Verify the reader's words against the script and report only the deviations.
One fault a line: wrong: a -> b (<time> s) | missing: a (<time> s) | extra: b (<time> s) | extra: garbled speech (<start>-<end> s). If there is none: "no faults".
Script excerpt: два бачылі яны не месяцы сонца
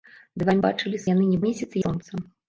no faults